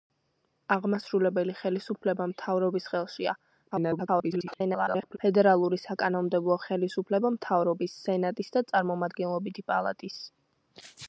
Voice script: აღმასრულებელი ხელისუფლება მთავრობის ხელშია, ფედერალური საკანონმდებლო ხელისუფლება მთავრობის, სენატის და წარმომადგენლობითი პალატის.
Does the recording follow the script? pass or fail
fail